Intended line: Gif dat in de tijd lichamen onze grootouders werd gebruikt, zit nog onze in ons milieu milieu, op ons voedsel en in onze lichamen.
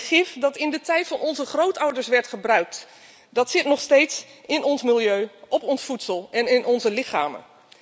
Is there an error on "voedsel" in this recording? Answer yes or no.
no